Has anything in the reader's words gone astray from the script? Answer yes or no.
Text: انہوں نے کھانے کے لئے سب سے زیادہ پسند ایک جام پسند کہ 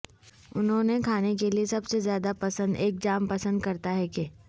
yes